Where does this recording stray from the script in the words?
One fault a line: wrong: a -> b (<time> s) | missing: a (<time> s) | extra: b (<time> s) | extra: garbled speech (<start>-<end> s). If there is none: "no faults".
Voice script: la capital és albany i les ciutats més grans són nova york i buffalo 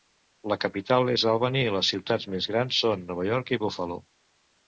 no faults